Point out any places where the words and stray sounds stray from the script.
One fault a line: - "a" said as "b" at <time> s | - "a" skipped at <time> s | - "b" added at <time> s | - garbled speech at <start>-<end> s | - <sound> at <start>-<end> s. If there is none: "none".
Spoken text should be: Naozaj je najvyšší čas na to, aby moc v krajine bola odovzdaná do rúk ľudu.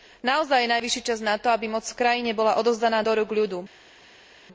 none